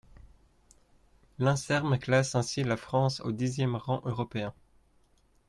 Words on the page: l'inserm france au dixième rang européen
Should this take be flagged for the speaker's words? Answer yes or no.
yes